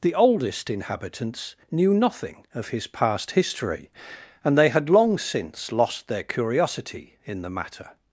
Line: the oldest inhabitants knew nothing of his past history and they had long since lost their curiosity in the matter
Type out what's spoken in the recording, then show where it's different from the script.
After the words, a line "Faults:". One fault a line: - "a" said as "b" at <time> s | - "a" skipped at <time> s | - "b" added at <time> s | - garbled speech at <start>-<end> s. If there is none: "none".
the oldest inhabitants knew nothing of his past history and they had long since lost their curiosity in the matter
Faults:
none